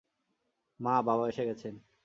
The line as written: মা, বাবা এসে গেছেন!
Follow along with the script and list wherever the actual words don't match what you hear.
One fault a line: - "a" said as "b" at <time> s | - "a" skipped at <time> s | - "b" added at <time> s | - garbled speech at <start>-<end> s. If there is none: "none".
none